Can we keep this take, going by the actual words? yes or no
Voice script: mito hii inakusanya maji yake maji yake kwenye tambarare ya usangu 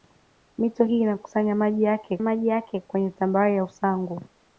yes